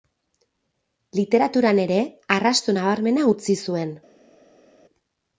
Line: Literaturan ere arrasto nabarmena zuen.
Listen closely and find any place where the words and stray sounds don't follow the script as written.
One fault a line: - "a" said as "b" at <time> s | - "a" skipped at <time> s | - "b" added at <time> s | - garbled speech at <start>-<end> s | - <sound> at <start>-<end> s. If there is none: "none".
- "utzi" added at 3.3 s